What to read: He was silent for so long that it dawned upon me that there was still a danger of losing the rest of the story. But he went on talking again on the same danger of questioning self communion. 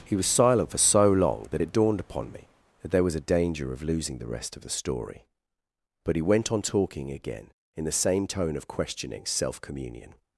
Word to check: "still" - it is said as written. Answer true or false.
false